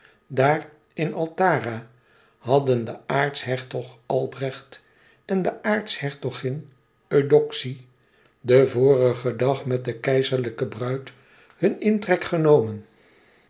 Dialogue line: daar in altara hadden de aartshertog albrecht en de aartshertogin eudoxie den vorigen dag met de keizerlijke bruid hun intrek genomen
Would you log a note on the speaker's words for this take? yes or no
no